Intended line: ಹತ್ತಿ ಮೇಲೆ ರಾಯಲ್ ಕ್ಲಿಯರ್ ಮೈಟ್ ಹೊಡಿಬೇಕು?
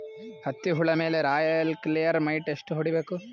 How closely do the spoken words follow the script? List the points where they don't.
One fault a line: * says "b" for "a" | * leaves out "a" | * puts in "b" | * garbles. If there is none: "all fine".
* puts in "ಹುಳ"
* puts in "ಎಷ್ಟ"